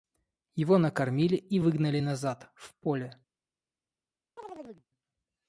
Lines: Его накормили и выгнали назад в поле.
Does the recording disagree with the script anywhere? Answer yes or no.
no